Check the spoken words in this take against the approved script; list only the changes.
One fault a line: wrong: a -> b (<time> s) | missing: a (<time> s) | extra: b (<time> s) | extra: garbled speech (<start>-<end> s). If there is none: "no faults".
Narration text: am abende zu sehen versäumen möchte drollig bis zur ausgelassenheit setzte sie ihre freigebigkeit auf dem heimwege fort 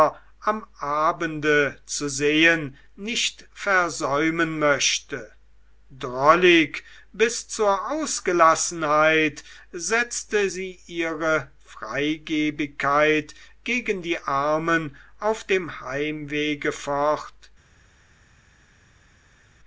extra: nicht (3.0 s)
extra: gegen die armen (13.6 s)